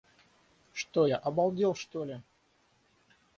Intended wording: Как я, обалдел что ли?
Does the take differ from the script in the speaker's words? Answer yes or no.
yes